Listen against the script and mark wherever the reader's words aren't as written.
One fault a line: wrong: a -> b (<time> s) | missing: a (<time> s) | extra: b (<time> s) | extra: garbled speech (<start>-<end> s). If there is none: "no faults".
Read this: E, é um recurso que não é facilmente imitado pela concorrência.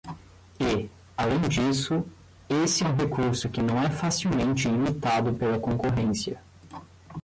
extra: além disso esse (1.1 s)